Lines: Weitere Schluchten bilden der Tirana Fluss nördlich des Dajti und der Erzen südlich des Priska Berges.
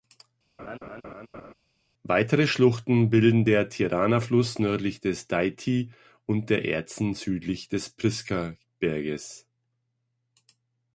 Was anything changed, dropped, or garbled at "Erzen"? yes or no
no